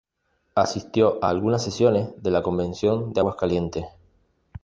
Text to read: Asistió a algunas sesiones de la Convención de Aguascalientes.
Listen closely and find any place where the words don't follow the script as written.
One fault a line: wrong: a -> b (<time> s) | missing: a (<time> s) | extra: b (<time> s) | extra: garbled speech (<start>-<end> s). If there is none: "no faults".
no faults